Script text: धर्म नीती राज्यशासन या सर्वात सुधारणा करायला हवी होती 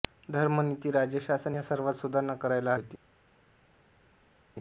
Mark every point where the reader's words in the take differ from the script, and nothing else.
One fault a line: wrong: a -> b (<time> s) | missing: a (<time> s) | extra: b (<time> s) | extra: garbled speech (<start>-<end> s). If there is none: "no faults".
missing: हवी (2.7 s)